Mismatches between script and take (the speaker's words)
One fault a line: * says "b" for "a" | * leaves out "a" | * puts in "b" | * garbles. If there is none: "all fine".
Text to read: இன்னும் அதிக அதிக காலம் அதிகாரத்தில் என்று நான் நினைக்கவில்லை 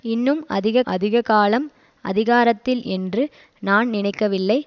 all fine